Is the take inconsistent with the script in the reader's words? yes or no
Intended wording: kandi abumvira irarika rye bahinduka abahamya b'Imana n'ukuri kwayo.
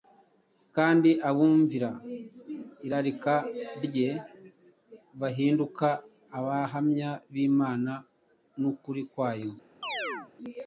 no